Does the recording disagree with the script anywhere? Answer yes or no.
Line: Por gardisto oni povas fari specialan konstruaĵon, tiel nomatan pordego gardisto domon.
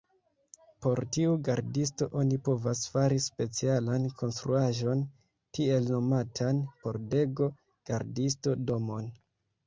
yes